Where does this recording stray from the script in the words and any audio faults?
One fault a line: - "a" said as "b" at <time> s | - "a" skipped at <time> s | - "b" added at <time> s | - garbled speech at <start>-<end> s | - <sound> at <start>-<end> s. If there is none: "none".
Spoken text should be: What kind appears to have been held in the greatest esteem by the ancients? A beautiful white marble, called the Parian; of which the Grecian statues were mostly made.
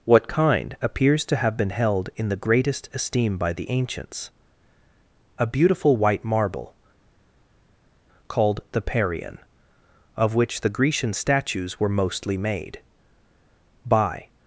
- "By" added at 13.8 s